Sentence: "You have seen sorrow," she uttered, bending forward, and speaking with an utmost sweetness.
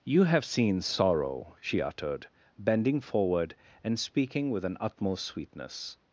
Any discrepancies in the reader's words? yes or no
no